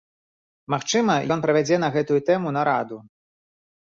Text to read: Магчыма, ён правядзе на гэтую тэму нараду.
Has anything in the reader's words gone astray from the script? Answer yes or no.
no